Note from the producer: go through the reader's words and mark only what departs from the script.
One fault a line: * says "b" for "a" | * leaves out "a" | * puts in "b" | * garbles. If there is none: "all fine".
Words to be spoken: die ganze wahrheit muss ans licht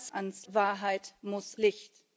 * says "ans" for "ganze"
* leaves out "ans"